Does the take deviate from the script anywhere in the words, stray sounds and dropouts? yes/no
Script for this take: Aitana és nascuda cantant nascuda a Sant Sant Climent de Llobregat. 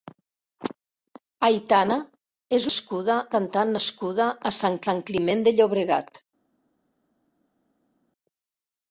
no